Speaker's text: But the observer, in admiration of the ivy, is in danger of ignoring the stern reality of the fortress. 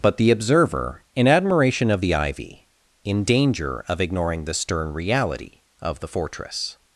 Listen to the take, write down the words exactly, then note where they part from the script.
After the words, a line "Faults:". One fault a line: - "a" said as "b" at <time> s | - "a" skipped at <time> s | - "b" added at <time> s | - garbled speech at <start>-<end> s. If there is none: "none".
But the observer, in admiration of the ivy, in danger of ignoring the stern reality of the fortress.
Faults:
- "is" skipped at 2.7 s